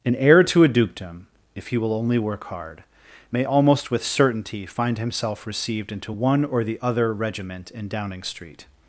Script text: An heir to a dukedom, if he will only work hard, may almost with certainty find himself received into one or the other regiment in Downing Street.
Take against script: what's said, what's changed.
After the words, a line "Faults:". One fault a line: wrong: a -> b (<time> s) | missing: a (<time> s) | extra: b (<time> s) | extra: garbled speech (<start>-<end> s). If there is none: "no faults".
An heir to a dukedom, if he will only work hard, may almost with certainty find himself received into one or the other regiment in Downing Street.
Faults:
no faults